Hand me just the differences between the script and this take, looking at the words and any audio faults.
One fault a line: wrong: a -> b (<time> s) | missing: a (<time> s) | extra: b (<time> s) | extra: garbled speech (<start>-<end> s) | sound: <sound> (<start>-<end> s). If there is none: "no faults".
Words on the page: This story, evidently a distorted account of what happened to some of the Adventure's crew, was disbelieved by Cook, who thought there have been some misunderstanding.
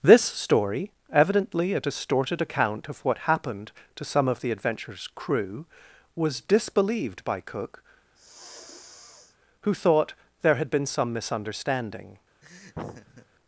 sound: sniff (8.1-9.4 s)
wrong: have -> had (10.6 s)
sound: laugh (12.4-13.3 s)